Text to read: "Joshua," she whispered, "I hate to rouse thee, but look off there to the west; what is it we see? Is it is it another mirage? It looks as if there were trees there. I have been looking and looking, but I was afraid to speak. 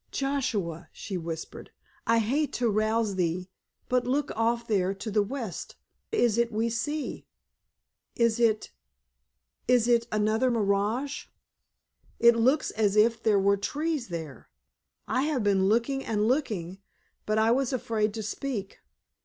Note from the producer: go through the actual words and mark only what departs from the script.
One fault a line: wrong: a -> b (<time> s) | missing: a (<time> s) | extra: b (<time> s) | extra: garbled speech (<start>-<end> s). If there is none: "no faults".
missing: what (5.8 s)